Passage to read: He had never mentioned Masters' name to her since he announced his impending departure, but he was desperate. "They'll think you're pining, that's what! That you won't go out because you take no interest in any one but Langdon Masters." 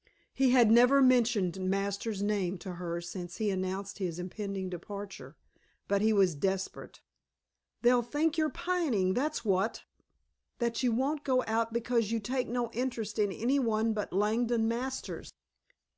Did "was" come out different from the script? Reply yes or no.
no